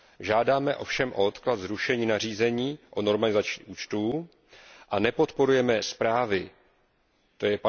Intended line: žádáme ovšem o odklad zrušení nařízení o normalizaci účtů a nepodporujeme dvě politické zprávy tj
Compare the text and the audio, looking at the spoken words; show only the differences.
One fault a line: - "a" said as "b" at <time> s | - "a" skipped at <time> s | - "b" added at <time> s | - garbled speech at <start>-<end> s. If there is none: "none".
- "dvě politické" skipped at 5.8 s